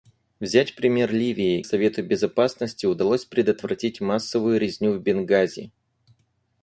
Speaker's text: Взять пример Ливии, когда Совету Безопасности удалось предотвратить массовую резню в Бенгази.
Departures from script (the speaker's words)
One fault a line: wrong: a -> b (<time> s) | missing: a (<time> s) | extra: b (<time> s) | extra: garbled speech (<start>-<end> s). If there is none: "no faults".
missing: когда (1.6 s)